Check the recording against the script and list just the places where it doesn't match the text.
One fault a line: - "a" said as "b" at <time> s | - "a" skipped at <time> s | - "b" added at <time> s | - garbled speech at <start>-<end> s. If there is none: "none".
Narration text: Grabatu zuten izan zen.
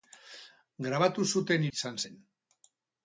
none